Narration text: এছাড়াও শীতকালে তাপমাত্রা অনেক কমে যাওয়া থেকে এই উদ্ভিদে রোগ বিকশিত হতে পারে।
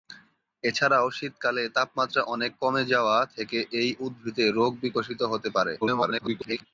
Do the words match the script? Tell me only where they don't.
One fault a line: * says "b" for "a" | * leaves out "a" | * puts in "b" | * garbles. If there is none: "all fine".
* garbles